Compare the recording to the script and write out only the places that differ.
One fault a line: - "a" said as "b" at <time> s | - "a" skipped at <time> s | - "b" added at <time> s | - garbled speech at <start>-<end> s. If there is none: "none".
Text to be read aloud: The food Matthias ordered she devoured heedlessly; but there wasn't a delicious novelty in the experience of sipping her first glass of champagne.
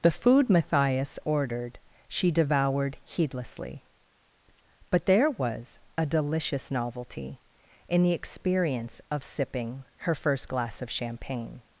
- "wasn't" said as "was" at 5.3 s